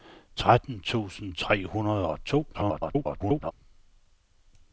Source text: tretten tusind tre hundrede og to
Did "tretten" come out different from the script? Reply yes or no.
no